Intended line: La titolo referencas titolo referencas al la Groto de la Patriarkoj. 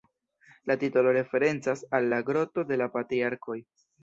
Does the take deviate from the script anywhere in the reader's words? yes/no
yes